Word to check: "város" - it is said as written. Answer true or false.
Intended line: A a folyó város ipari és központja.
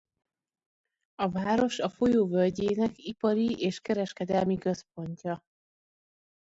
false